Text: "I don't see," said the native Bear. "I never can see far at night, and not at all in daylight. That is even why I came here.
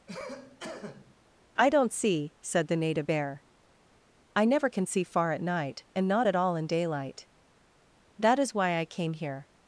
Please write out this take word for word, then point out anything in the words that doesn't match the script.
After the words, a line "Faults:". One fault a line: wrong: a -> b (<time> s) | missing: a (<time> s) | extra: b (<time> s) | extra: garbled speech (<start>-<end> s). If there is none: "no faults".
"I don't see," said the native Bear. "I never can see far at night, and not at all in daylight. That is why I came here.
Faults:
missing: even (8.5 s)